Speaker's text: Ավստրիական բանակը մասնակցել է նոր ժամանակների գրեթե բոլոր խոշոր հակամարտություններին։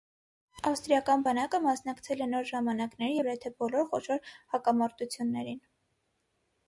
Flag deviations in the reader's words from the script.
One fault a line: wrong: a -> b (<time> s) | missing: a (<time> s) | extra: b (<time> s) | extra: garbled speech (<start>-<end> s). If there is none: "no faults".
no faults